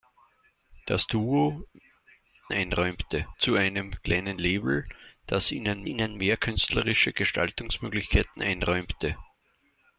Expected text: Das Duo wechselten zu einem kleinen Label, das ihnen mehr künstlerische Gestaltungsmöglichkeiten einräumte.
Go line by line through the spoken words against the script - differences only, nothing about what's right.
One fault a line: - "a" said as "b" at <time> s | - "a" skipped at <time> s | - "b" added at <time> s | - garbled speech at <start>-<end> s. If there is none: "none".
- "wechselten" said as "einräumte" at 2.5 s
- "ihnen" added at 5.8 s